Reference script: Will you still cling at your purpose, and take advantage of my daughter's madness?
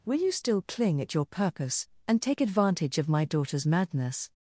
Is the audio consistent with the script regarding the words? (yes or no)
yes